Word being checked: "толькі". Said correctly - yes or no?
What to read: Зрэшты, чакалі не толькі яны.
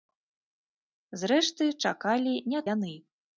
no